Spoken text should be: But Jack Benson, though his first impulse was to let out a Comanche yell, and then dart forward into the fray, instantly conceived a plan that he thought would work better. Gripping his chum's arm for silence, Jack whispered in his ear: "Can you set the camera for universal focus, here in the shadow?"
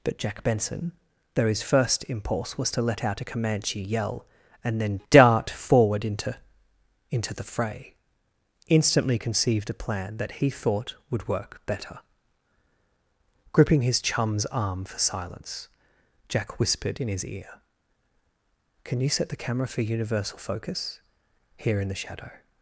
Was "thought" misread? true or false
false